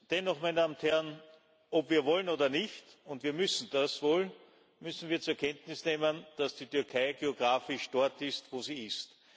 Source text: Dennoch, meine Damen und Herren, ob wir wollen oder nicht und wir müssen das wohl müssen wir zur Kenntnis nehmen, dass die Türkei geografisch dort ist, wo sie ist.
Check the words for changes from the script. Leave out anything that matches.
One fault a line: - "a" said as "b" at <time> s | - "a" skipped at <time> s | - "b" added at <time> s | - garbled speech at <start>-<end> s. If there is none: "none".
none